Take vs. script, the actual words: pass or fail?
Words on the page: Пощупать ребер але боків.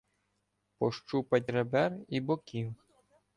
fail